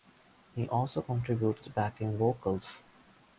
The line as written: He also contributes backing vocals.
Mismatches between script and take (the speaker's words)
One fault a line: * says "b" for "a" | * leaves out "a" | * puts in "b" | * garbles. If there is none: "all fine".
all fine